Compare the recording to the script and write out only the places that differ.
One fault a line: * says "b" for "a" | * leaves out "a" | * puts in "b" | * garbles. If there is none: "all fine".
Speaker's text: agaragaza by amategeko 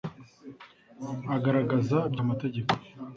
all fine